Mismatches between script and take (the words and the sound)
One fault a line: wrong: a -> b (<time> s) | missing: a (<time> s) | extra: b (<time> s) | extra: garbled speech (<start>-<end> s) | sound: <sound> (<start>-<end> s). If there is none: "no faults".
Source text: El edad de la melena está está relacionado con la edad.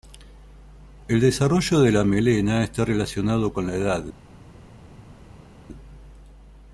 wrong: edad -> desarrollo (1.2 s)
missing: está (2.8 s)